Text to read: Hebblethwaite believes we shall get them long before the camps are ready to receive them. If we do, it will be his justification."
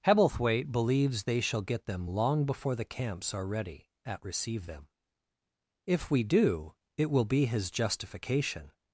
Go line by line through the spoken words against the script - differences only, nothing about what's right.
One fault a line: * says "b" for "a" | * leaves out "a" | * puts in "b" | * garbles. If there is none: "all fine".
* says "they" for "we"
* says "at" for "to"